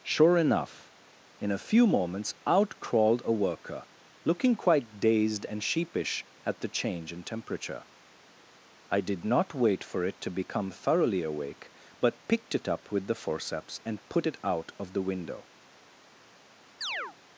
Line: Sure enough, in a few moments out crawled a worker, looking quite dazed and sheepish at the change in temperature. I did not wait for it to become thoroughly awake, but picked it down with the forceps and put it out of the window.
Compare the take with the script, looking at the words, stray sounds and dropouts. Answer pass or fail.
fail